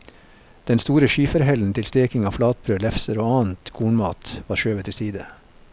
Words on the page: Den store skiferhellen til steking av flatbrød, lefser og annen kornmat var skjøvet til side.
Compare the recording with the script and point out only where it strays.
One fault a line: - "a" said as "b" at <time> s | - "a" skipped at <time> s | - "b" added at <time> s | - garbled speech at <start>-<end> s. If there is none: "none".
none